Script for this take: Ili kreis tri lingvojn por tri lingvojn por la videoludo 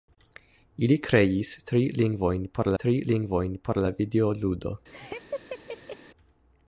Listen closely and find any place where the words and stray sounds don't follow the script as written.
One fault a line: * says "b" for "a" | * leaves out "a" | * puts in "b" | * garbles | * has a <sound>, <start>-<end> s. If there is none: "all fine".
* has a laugh, 4.9-6.0 s